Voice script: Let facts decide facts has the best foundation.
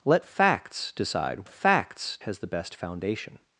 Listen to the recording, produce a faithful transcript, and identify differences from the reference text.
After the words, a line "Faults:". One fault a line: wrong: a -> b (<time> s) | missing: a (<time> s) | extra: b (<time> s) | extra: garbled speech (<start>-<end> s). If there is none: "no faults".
Let facts decide facts has the best foundation.
Faults:
no faults